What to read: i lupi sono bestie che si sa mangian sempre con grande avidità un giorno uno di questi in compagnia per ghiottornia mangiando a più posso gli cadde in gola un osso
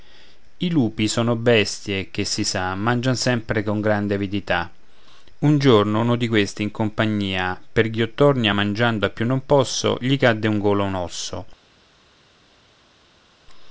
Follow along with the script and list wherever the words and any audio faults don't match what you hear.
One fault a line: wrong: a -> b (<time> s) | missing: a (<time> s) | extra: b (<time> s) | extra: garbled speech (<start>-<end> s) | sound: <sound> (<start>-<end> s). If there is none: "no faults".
extra: non (9.3 s)